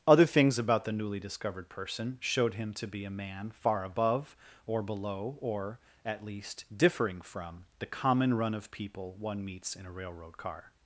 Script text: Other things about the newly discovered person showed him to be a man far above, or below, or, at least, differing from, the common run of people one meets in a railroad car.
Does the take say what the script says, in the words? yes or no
yes